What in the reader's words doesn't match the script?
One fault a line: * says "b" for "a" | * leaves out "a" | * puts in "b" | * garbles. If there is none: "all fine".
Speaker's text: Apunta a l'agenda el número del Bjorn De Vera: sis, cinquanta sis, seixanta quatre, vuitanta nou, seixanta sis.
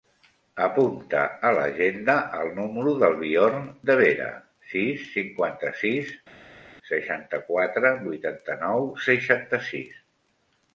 all fine